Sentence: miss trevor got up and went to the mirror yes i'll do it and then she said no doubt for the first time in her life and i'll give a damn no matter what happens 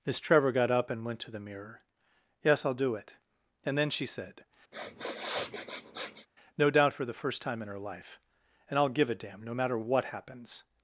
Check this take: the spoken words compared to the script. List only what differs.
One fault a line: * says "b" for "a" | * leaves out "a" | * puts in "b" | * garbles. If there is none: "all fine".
all fine